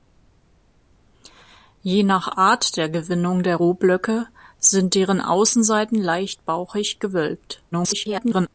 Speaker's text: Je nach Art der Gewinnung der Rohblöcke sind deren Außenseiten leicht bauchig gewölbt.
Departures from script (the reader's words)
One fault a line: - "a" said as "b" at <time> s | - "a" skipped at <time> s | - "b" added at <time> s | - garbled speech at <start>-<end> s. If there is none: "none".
- garbled speech at 7.7-8.5 s